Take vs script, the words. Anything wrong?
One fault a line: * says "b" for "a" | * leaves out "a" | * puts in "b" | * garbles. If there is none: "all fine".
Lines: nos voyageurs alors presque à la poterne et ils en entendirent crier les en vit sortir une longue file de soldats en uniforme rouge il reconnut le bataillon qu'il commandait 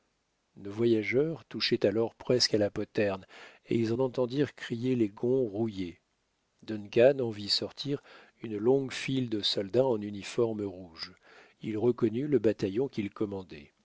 * puts in "touchaient"
* puts in "gonds rouillés duncan"